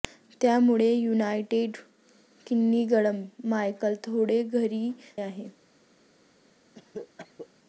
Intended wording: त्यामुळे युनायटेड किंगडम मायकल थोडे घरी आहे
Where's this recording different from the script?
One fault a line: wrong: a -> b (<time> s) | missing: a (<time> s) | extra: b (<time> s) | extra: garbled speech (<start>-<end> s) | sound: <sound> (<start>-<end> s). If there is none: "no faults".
sound: cough (6.7-7.5 s)